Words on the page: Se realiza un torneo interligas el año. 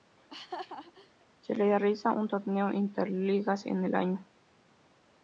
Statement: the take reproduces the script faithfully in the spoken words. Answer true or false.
false